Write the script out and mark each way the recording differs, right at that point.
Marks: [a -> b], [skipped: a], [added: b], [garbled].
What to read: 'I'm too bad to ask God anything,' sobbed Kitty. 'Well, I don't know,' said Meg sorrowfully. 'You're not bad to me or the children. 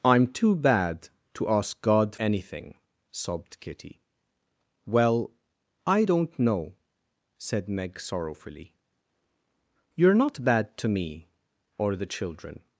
'I'm too bad to ask God anything,' sobbed Kitty. 'Well, I don't know,' said Meg sorrowfully. 'You're not bad to me or the children.